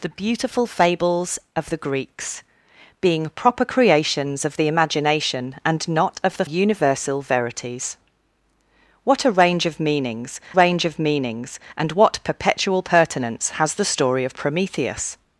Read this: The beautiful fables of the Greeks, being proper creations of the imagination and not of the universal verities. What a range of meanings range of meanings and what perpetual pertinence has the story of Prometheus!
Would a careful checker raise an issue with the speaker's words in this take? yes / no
no